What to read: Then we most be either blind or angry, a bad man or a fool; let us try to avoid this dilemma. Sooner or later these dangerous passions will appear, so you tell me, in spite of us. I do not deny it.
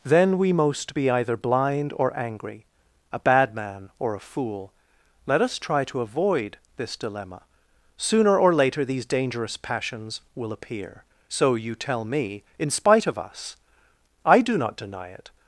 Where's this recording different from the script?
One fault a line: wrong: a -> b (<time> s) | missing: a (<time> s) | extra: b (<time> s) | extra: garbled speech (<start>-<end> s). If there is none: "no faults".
no faults